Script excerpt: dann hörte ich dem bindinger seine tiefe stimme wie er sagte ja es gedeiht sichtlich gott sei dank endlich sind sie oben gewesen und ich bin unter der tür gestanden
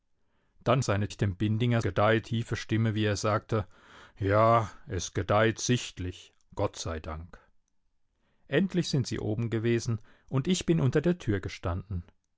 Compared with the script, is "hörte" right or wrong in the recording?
wrong